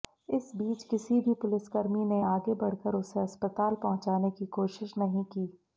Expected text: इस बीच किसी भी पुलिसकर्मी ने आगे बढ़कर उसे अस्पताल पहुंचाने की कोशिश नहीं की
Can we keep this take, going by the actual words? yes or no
yes